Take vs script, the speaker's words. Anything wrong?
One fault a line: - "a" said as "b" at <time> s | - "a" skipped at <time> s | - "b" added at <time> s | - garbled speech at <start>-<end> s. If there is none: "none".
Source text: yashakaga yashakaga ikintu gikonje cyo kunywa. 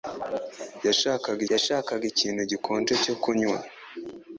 none